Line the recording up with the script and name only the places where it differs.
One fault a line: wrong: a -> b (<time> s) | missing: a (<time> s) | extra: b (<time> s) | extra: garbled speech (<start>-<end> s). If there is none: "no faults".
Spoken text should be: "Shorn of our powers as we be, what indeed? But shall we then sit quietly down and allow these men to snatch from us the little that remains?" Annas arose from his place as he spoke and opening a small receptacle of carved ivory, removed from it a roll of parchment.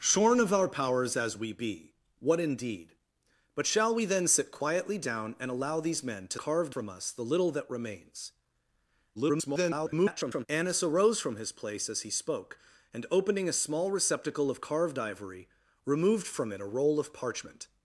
wrong: snatch -> carved (6.4 s)
extra: garbled speech (9.1-10.5 s)